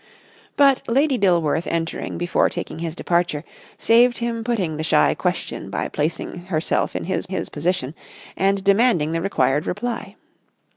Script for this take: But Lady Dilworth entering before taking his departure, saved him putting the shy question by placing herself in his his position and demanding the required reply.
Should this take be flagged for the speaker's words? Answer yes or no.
no